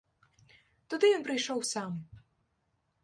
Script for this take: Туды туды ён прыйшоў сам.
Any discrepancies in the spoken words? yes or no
yes